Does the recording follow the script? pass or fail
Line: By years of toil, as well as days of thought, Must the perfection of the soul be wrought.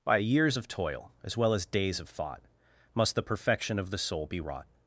pass